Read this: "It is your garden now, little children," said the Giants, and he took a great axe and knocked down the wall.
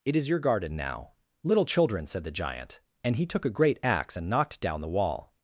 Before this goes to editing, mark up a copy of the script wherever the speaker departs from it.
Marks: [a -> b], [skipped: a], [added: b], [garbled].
"It is your garden now, little children," said the [Giants, -> Giant] and he took a great axe and knocked down the wall.